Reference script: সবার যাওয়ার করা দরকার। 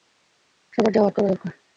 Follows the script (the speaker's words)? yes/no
yes